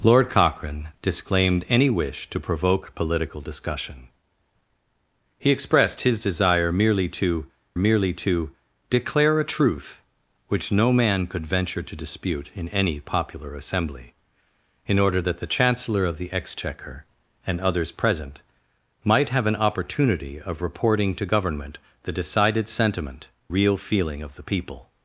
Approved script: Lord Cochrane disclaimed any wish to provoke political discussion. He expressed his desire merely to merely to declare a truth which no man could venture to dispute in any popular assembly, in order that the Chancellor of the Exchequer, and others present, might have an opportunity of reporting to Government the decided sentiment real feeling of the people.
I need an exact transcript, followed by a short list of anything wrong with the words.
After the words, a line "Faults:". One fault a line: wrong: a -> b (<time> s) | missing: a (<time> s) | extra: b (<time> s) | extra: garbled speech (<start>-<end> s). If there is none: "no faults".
Lord Cochrane disclaimed any wish to provoke political discussion. He expressed his desire merely to merely to declare a truth which no man could venture to dispute in any popular assembly, in order that the Chancellor of the Exchequer, and others present, might have an opportunity of reporting to Government the decided sentiment real feeling of the people.
Faults:
no faults